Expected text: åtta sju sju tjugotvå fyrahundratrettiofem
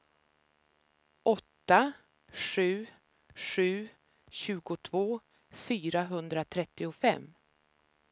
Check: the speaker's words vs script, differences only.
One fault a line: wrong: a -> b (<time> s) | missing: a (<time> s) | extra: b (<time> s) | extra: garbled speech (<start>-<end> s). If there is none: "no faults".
no faults